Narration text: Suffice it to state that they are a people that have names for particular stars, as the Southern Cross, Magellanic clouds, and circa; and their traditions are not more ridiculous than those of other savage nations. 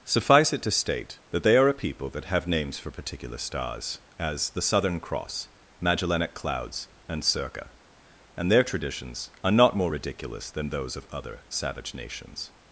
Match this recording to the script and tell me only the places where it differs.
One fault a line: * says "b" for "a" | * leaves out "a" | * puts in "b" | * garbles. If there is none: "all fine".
all fine